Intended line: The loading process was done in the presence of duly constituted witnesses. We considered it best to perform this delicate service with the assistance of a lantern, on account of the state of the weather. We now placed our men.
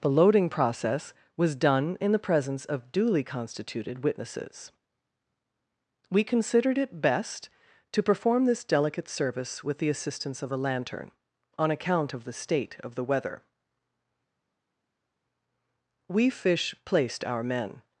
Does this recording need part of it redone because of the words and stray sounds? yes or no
yes